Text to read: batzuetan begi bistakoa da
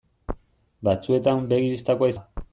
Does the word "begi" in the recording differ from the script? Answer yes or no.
no